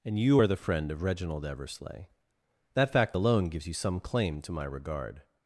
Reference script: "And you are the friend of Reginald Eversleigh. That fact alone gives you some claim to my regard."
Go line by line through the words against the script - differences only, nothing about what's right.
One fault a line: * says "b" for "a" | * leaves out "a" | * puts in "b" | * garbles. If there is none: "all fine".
all fine